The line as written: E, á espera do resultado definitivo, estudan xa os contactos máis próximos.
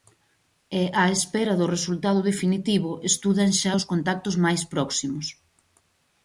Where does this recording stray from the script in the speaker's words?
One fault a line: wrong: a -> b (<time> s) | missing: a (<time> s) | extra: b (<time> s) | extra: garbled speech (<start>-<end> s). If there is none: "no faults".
no faults